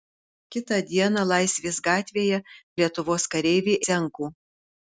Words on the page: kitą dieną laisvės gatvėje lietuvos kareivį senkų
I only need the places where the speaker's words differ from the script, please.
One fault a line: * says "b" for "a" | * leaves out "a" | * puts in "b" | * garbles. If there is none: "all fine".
all fine